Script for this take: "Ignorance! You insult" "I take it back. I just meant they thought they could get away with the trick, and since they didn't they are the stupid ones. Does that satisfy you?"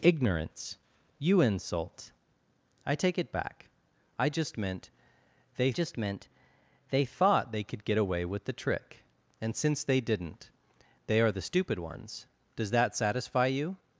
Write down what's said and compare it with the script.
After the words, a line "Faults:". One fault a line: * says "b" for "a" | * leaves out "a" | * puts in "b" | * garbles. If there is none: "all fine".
"Ignorance! You insult" "I take it back. I just meant they just meant they thought they could get away with the trick, and since they didn't they are the stupid ones. Does that satisfy you?"
Faults:
* puts in "just meant they"